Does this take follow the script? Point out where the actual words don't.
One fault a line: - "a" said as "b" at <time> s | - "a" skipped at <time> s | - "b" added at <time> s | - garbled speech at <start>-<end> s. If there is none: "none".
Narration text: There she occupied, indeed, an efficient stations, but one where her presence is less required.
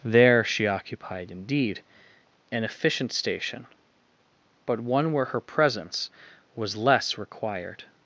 - "stations" said as "station" at 3.1 s
- "is" said as "was" at 6.5 s